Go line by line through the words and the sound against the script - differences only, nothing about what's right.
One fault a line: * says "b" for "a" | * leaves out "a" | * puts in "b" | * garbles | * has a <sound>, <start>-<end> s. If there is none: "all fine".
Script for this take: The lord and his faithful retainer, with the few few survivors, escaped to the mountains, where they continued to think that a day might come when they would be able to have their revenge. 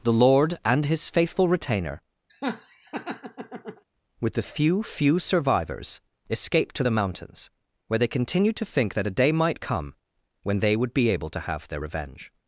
* has a laugh, 2.3-3.8 s